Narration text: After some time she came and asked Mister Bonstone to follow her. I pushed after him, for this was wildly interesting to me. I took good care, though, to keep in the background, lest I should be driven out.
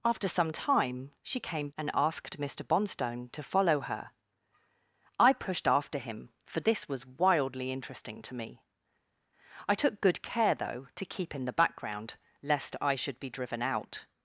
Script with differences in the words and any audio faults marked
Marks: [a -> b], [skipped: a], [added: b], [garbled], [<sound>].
After some time she came and asked Mister Bonstone to follow her. I pushed after him, for this was wildly interesting to me. I took good care, though, to keep in the background, lest I should be driven out.